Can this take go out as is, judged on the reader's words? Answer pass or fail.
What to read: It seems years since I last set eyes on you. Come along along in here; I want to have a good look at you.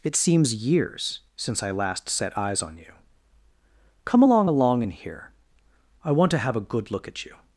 pass